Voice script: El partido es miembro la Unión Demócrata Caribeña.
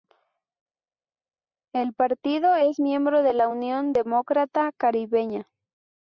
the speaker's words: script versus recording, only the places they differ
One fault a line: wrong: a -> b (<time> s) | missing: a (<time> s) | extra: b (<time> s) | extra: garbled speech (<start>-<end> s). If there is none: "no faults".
extra: de (3.2 s)